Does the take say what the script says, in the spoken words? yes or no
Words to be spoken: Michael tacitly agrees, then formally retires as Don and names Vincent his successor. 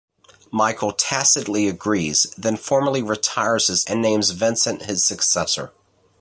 no